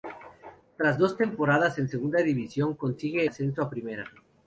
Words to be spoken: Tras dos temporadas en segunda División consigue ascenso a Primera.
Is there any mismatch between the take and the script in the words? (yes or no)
no